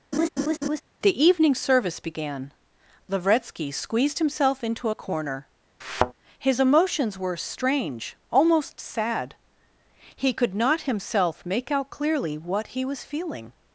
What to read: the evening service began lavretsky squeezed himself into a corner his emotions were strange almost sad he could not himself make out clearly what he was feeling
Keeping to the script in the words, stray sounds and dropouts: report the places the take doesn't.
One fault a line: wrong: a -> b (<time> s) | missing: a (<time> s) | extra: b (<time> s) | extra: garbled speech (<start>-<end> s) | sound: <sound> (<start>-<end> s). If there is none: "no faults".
sound: laugh (0.1-0.8 s)
sound: thud (5.8-6.1 s)